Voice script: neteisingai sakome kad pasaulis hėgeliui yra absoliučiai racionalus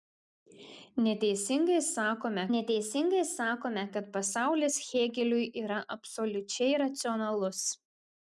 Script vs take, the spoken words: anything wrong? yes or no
yes